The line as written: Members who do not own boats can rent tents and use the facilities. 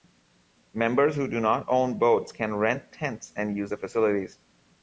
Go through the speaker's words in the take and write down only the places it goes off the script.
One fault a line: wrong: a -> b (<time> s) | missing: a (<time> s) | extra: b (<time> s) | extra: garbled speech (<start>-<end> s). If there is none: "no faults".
no faults